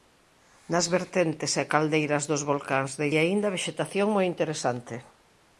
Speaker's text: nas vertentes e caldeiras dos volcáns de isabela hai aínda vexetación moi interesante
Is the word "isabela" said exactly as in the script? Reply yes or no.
no